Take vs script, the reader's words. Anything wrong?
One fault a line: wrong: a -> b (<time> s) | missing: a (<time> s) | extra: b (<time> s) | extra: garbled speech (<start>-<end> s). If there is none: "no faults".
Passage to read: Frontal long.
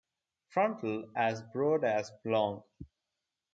extra: as broad as (1.1 s)